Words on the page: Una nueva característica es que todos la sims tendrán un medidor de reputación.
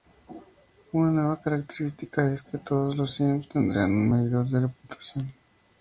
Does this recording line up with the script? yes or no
no